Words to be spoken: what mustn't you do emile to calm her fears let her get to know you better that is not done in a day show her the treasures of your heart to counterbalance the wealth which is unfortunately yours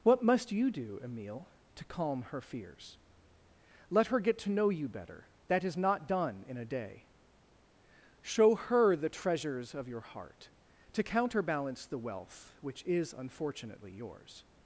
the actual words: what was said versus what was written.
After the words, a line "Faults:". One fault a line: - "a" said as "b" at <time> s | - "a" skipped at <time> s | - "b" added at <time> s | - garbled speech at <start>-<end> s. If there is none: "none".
what must you do emile to calm her fears let her get to know you better that is not done in a day show her the treasures of your heart to counterbalance the wealth which is unfortunately yours
Faults:
- "mustn't" said as "must" at 0.2 s